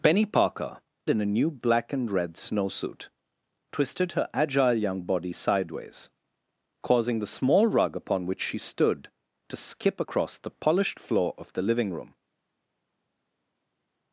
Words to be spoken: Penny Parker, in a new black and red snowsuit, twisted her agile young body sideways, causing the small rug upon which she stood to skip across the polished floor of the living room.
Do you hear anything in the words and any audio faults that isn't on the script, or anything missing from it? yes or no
no